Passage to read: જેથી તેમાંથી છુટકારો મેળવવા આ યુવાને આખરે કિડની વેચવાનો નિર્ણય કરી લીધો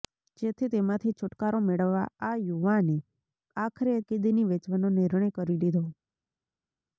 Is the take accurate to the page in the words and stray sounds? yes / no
yes